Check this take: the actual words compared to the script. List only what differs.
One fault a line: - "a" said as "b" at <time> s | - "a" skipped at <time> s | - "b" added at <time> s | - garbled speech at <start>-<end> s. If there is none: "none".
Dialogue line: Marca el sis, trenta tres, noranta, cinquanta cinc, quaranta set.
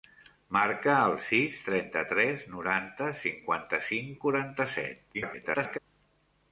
- garbled speech at 5.1-5.8 s